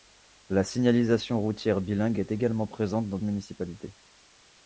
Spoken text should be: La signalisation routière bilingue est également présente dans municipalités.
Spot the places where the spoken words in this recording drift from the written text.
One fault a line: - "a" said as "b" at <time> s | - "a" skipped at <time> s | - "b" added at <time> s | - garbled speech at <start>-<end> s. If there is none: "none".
none